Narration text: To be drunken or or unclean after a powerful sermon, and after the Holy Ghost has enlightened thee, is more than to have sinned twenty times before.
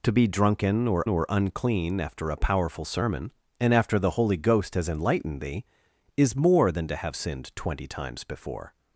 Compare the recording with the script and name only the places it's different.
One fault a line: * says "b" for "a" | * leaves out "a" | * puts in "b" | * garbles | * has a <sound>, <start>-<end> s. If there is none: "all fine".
all fine